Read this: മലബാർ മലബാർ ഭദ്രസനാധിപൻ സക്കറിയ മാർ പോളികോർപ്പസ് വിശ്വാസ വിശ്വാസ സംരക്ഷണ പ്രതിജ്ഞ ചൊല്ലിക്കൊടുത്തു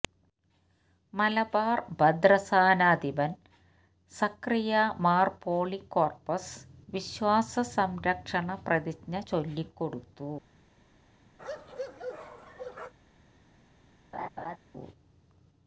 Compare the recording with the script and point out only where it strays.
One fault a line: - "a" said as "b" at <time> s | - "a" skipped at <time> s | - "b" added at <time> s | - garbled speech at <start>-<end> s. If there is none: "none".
- "മലബാർ" skipped at 1.8 s
- "വിശ്വാസ" skipped at 7.5 s